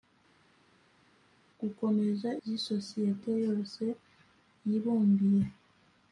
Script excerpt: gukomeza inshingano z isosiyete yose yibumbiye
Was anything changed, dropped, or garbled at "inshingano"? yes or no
yes